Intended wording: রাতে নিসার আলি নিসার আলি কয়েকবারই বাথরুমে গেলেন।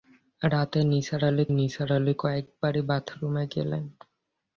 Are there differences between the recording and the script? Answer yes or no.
no